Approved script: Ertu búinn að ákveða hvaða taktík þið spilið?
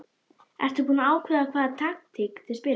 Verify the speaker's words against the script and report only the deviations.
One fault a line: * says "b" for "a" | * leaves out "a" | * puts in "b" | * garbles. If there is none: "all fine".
all fine